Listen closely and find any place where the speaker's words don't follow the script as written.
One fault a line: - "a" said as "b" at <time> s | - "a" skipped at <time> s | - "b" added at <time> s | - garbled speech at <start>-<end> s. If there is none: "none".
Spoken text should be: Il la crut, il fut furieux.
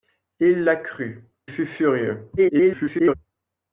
- "il" skipped at 1.2 s
- garbled speech at 2.4-3.1 s